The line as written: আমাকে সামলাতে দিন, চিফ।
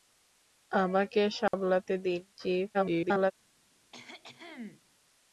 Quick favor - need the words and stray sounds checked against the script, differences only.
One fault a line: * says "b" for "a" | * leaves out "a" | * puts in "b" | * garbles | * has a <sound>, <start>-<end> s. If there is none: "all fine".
* has a dropout, 1.5-1.5 s
* garbles
* has a cough, 3.9-4.8 s